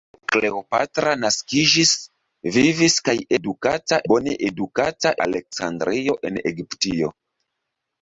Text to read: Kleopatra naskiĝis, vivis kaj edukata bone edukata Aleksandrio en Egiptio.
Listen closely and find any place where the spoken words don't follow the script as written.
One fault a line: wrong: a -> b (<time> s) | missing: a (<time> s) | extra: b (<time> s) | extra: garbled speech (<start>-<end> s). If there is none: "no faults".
no faults